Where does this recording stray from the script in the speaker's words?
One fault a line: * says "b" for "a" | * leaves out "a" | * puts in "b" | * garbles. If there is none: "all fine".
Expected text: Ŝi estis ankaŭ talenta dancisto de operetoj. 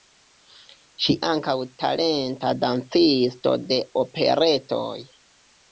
* leaves out "estis"